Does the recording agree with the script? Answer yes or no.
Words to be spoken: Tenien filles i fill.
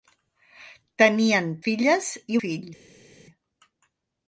yes